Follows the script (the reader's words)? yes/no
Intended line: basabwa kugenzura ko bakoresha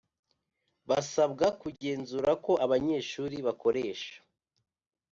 no